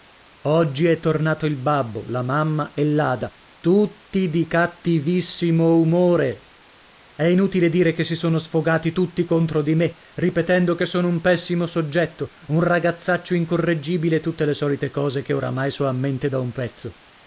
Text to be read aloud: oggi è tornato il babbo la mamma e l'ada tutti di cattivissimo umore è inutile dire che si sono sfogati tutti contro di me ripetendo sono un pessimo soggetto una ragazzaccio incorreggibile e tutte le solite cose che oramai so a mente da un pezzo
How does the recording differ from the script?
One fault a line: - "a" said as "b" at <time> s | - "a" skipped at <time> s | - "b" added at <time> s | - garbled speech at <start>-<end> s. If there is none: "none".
- "che" added at 10.7 s
- "una" said as "un" at 12.5 s